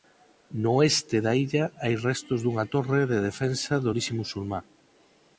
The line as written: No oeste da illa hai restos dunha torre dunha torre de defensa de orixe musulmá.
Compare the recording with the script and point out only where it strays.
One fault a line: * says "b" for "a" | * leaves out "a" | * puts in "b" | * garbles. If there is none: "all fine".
* leaves out "dunha torre"